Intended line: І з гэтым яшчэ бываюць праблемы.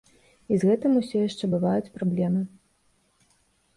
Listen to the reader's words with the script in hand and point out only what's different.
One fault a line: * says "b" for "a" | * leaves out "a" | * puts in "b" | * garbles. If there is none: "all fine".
* puts in "усё"